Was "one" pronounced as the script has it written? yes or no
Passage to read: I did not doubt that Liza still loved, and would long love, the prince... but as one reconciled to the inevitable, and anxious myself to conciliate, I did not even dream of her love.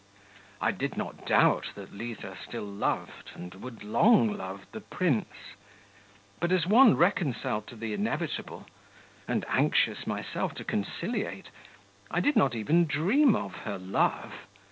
yes